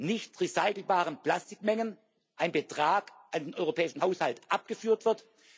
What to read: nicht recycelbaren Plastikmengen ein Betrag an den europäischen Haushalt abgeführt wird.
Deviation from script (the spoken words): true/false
false